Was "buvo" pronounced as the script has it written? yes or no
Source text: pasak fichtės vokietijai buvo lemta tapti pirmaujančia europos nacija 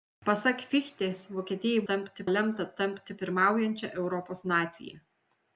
no